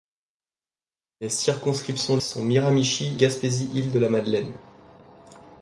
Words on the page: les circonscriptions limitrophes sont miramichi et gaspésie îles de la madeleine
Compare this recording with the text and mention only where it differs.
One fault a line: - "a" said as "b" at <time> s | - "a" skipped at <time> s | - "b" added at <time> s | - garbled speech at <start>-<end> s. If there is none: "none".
- "limitrophes" skipped at 2.2 s
- "et" skipped at 3.2 s